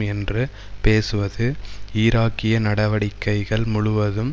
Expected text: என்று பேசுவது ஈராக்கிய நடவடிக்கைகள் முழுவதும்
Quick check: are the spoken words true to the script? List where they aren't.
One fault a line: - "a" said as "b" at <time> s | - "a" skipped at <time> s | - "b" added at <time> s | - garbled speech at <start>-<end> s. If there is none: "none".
none